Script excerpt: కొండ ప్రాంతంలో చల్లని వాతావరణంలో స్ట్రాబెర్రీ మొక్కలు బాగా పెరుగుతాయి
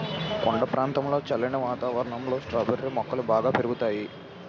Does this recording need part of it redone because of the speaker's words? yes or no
no